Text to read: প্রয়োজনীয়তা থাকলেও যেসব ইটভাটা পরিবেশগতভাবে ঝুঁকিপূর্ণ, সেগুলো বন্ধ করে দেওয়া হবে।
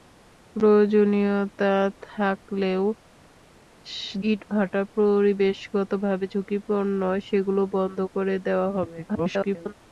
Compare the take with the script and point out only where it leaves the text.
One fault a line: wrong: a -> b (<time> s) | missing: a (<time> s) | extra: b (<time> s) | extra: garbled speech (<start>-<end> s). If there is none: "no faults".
missing: যেসব (2.8 s)
extra: garbled speech (9.1-9.7 s)